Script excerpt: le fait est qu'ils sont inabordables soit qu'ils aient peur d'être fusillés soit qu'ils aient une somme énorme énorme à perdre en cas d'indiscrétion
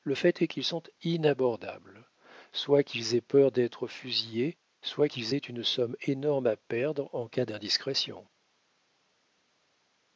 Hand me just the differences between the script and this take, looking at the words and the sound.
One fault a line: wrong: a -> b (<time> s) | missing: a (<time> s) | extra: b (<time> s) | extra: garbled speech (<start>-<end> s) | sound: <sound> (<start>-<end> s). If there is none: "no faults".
missing: énorme (6.5 s)